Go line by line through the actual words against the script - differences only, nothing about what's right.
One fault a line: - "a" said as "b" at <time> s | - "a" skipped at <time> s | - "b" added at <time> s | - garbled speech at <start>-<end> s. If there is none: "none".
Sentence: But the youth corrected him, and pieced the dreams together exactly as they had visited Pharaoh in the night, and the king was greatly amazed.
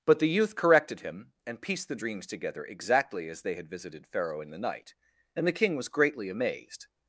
none